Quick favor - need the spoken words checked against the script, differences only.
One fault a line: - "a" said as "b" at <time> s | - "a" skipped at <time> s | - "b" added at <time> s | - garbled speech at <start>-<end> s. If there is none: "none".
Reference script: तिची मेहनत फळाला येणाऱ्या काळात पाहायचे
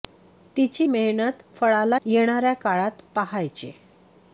none